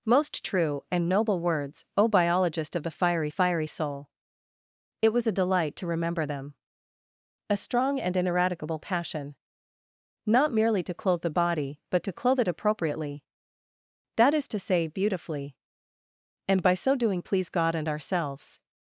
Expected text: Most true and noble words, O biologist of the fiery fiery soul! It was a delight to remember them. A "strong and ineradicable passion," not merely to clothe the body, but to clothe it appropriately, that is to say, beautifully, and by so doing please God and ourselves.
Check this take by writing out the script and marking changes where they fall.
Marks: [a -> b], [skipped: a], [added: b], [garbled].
Most true and noble words, O biologist of the fiery fiery soul! It was a delight to remember them. A "strong and ineradicable passion," not merely to clothe the body, but to clothe it appropriately, that is to say, beautifully, and by so doing please God and ourselves.